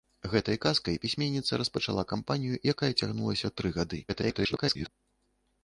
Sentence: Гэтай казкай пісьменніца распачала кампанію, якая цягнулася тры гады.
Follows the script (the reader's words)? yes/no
no